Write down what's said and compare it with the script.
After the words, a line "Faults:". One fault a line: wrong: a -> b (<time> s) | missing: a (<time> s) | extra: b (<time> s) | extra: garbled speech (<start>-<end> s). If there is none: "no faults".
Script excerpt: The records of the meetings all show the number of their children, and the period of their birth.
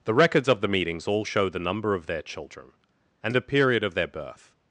The records of the meetings all show the number of their children, and the period of their birth.
Faults:
no faults